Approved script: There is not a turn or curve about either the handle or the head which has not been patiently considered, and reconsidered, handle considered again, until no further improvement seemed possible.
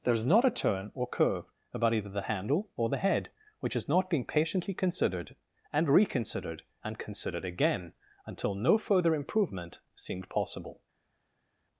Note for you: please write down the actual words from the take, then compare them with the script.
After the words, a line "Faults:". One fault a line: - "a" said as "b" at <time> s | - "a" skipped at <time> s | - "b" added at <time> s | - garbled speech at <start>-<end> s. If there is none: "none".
There is not a turn or curve about either the handle or the head which has not been patiently considered, and reconsidered, and considered again, until no further improvement seemed possible.
Faults:
- "handle" said as "and" at 6.8 s